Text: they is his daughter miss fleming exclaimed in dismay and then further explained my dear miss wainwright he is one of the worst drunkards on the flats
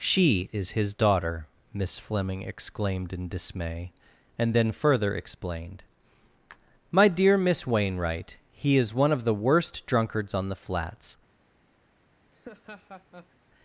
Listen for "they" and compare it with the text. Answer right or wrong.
wrong